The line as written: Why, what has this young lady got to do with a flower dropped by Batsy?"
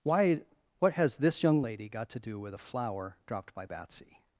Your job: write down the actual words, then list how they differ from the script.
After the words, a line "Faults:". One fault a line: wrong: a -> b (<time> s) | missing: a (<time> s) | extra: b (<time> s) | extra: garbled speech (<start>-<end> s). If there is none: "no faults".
Why, what has this young lady got to do with a flower dropped by Batsy?"
Faults:
no faults